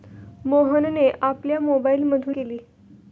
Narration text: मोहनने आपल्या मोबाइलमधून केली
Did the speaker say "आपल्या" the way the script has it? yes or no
yes